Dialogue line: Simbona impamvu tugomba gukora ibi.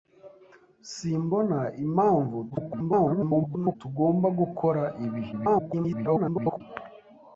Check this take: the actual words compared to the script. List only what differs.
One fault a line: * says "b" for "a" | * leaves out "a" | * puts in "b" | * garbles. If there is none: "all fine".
* garbles
* garbles